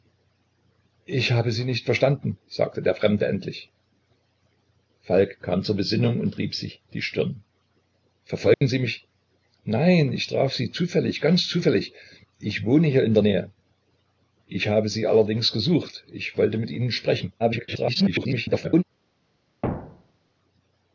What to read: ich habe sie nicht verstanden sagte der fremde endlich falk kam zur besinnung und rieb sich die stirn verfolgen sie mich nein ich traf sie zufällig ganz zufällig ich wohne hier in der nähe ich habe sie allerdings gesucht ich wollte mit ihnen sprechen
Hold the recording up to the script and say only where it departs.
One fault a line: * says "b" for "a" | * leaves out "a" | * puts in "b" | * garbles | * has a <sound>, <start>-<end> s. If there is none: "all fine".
* has a dropout, 8.5-8.6 s
* garbles
* has a thud, 19.6-20.3 s